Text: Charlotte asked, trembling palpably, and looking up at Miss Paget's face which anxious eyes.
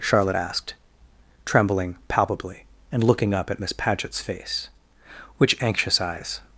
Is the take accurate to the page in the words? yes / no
yes